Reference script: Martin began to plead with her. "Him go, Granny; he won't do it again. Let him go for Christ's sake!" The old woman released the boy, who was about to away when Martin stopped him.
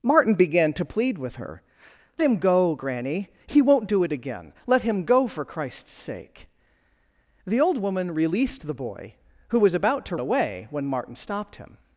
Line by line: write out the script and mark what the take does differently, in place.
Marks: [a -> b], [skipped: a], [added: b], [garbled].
Martin began to plead with her. "Him go, Granny; he won't do it again. Let him go for Christ's sake!" The old woman released the boy, who was about to away when Martin stopped him.